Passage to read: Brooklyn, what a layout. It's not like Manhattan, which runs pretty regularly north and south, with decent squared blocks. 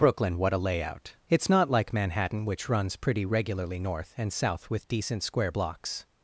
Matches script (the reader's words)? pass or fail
fail